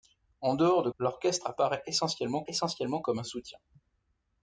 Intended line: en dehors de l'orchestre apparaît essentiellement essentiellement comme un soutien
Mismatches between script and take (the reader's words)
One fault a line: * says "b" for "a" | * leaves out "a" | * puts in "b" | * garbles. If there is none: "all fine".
all fine